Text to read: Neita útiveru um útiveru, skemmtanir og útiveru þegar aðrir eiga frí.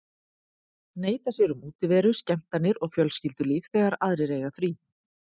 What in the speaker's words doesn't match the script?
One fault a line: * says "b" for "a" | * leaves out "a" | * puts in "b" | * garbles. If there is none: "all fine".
* says "sér" for "útiveru"
* says "fjölskyldulíf" for "útiveru"